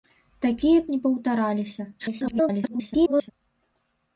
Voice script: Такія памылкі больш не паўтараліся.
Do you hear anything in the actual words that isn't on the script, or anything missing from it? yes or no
yes